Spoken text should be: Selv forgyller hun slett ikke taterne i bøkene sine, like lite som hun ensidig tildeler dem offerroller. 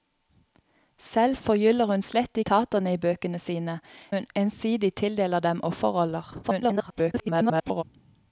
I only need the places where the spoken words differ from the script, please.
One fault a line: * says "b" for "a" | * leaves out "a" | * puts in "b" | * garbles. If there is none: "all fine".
* leaves out "ikke"
* leaves out "like lite som"
* garbles